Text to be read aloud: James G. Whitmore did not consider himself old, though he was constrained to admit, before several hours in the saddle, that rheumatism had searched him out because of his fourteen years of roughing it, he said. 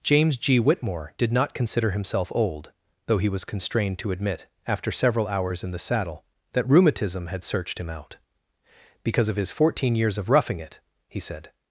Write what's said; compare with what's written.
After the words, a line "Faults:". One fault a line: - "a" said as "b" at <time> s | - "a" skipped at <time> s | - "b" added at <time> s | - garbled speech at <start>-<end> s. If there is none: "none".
James G. Whitmore did not consider himself old, though he was constrained to admit, after several hours in the saddle, that rheumatism had searched him out because of his fourteen years of roughing it, he said.
Faults:
- "before" said as "after" at 4.7 s